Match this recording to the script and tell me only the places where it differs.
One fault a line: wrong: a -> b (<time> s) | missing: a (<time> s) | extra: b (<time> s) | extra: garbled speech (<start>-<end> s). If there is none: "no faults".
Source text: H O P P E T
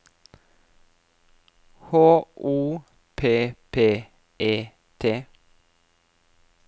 no faults